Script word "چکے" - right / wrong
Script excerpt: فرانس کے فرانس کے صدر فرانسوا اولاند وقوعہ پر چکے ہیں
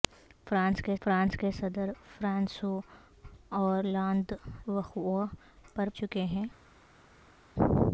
right